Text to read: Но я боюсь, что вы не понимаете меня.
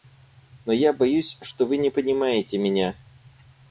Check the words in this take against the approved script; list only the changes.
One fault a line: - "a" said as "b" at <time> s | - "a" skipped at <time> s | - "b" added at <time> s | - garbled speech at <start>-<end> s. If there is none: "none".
none